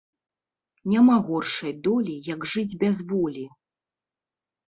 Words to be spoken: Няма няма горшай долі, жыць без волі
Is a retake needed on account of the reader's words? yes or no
yes